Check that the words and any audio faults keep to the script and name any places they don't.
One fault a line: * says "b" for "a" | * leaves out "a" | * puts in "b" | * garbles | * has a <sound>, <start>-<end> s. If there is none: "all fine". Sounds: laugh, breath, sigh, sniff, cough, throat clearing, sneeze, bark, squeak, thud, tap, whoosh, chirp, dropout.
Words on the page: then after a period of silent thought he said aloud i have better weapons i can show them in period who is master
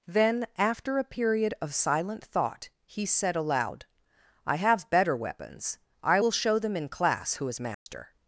* says "will" for "can"
* says "class" for "period"
* has a dropout, 7.7-7.9 s